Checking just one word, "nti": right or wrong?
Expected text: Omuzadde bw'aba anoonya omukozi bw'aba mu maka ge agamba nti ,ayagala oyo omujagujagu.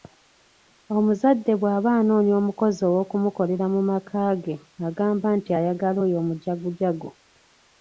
right